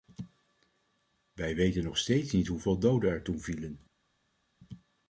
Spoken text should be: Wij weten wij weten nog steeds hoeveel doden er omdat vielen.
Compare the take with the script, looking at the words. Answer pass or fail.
fail